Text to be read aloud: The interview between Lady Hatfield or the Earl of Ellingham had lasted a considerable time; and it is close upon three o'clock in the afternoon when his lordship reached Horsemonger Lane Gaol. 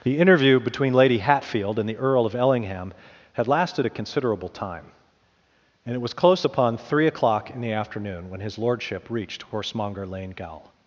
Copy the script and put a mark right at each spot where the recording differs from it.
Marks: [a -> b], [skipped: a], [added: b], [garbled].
The interview between Lady Hatfield [or -> and] the Earl of Ellingham had lasted a considerable time; and it [is -> was] close upon three o'clock in the afternoon when his lordship reached Horsemonger Lane Gaol.